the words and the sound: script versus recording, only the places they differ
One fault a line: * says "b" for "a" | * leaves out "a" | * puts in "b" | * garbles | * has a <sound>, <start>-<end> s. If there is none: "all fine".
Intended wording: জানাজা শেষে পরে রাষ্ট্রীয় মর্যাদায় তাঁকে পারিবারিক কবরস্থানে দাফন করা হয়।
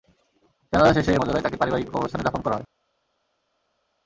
* leaves out "পরে রাষ্ট্রীয়"